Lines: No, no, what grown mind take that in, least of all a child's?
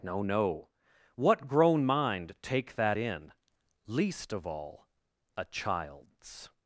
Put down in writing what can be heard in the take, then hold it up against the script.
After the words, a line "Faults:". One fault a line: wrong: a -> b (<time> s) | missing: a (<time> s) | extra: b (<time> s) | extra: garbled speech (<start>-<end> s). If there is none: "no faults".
No, no, what grown mind take that in, least of all a child's?
Faults:
no faults